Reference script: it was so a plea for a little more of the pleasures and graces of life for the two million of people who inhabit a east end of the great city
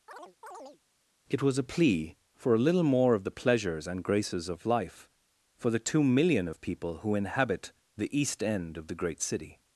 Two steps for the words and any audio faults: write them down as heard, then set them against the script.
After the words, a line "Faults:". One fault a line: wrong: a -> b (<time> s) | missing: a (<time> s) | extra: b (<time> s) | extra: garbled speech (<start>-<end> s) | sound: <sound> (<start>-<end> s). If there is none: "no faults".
it was a plea for a little more of the pleasures and graces of life for the two million of people who inhabit the east end of the great city
Faults:
sound: chirp (0.1-0.8 s)
missing: so (1.6 s)
wrong: a -> the (8.0 s)